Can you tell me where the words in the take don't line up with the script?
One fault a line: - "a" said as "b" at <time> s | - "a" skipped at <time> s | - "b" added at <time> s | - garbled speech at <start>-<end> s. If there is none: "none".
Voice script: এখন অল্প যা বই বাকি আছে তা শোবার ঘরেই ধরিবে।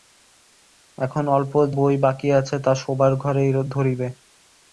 - "যা" skipped at 1.5 s